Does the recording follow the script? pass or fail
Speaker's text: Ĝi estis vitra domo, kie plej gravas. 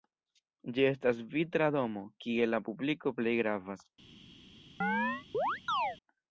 fail